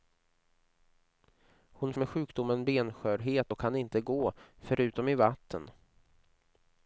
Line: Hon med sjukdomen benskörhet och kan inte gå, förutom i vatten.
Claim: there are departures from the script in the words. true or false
false